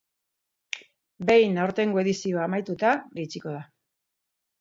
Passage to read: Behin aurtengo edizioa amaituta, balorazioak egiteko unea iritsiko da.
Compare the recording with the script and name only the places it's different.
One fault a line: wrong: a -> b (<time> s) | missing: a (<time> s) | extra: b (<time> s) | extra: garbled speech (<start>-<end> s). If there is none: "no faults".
missing: balorazioak egiteko unea (3.0 s)